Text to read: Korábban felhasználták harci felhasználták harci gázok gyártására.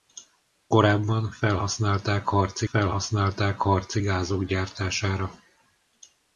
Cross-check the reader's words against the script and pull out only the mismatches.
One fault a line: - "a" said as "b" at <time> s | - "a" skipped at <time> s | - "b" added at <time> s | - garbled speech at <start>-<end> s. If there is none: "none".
none